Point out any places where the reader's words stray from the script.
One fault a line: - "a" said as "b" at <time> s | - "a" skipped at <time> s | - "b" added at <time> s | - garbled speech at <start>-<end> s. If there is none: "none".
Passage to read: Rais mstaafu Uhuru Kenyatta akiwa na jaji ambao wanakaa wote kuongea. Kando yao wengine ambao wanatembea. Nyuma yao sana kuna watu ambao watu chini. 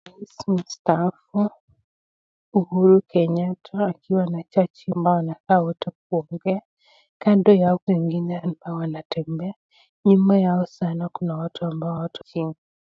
none